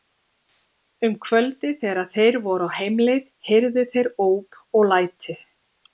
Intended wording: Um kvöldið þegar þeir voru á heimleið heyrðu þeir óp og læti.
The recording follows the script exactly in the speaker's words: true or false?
true